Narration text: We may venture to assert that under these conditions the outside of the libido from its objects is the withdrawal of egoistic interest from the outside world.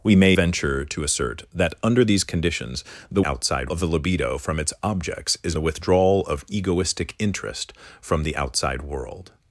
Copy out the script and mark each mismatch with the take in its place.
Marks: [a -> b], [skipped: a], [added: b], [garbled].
We may venture to assert that under these conditions the outside of the libido from its objects is the withdrawal of egoistic interest from the outside world.